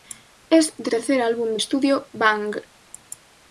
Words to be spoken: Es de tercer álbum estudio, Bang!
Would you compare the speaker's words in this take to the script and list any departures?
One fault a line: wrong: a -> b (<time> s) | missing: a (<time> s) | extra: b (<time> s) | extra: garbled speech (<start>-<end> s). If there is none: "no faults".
no faults